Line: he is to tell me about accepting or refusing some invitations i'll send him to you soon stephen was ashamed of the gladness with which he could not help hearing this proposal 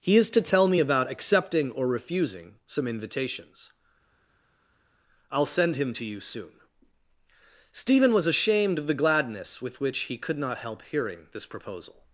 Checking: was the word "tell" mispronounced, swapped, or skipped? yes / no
no